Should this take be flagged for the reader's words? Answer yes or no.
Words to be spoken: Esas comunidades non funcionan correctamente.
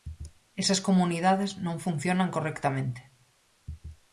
no